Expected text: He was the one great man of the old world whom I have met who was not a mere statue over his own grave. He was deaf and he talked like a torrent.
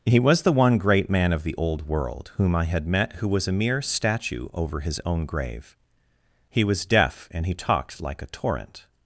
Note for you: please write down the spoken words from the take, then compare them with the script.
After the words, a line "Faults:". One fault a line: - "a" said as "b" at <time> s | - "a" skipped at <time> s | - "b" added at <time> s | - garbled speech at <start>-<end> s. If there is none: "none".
He was the one great man of the old world whom I had met who was a mere statue over his own grave. He was deaf and he talked like a torrent.
Faults:
- "have" said as "had" at 2.6 s
- "not" skipped at 3.5 s